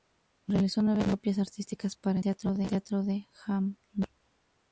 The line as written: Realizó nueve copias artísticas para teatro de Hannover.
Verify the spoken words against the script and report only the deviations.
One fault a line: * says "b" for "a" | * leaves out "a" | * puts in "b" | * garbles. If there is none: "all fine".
all fine